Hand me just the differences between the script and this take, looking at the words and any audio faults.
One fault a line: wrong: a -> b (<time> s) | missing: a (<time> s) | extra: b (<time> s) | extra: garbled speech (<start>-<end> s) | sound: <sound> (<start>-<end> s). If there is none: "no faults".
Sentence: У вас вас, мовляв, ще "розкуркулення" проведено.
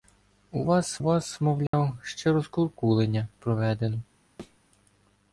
sound: dropout (1.7-1.7 s)
sound: thud (4.4-4.6 s)